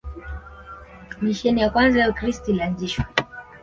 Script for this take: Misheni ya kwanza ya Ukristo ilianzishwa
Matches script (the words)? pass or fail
pass